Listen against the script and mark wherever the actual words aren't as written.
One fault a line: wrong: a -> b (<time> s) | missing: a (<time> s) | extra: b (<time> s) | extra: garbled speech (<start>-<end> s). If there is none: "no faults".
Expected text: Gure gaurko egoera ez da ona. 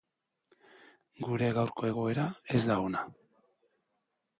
no faults